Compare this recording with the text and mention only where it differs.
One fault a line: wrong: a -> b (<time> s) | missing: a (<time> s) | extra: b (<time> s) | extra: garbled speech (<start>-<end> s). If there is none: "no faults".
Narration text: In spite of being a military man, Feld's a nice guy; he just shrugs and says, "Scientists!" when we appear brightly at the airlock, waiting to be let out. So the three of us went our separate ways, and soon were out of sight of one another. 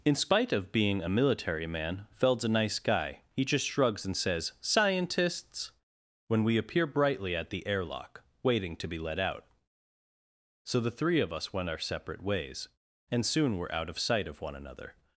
no faults